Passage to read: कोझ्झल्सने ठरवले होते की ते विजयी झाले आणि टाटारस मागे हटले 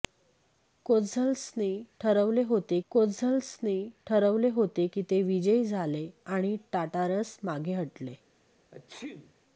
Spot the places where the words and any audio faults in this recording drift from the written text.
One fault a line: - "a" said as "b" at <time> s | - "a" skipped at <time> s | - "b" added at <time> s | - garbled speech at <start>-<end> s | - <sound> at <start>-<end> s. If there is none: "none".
- "कोझ्झल्सने ठरवले होते" added at 2.9 s
- sneeze at 8.7-9.3 s